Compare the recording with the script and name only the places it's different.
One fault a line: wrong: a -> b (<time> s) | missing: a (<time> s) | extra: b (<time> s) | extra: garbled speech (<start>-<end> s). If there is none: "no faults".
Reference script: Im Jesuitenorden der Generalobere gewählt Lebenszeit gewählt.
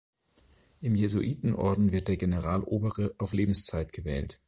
extra: wird (1.9 s)
wrong: gewählt -> auf (3.2 s)